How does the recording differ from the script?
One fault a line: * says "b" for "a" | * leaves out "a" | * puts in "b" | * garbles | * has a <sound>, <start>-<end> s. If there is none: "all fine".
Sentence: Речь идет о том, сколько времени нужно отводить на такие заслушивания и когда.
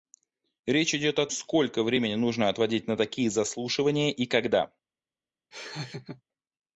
* leaves out "том"
* has a laugh, 5.5-6.2 s